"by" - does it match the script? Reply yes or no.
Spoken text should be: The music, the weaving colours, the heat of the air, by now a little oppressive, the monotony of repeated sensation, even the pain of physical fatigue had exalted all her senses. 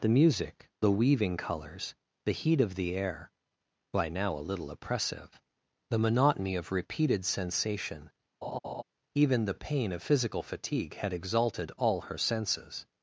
yes